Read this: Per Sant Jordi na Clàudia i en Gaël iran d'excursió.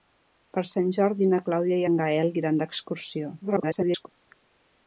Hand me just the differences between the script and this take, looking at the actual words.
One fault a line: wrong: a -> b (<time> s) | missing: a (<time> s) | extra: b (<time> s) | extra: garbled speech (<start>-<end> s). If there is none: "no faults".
extra: garbled speech (3.4-4.1 s)